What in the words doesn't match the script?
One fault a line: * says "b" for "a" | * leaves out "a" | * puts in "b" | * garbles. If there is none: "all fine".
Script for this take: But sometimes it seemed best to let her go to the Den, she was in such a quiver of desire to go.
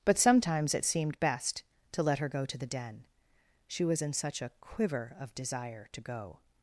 all fine